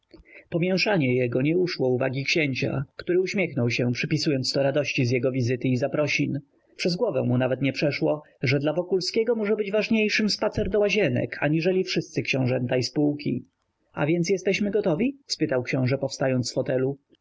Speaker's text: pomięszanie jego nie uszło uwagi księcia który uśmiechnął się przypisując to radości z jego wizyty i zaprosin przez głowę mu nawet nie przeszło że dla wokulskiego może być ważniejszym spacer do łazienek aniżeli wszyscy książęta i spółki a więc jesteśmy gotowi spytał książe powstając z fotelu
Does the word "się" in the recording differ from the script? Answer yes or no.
no